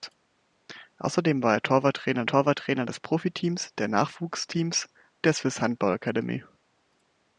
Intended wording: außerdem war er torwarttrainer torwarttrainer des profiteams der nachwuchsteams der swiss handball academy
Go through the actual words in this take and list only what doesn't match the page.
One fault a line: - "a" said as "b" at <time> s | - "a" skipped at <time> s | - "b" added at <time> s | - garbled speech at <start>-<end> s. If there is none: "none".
none